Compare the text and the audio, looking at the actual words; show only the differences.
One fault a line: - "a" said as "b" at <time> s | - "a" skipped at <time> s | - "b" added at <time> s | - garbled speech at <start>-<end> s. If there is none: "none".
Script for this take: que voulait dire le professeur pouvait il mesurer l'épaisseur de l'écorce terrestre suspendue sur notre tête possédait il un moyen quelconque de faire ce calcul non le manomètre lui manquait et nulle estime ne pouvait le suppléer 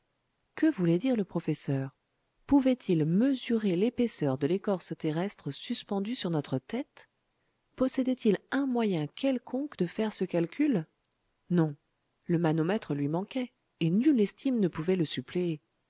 none